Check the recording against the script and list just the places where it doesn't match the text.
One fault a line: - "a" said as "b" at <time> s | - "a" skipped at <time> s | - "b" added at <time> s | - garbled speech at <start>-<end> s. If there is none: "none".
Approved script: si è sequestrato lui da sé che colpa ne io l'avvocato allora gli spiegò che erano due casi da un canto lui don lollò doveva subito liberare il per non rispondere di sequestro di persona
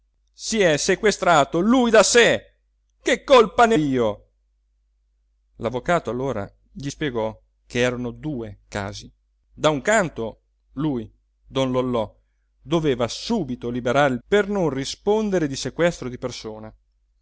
none